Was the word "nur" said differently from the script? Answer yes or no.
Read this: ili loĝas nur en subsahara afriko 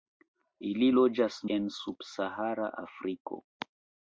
yes